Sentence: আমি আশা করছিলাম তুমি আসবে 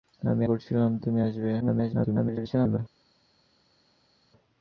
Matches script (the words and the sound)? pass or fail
fail